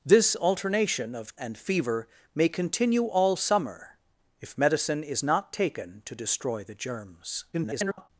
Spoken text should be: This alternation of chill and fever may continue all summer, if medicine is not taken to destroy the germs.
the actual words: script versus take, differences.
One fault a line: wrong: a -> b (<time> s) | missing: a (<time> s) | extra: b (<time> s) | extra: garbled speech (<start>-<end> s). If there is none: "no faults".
missing: chill (1.4 s)
extra: garbled speech (7.5-8.1 s)